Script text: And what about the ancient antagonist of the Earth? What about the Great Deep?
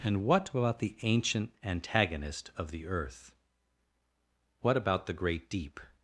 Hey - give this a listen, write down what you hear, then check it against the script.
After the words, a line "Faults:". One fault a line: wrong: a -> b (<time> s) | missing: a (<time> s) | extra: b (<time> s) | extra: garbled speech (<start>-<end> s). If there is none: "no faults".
And what about the ancient antagonist of the Earth? What about the Great Deep?
Faults:
no faults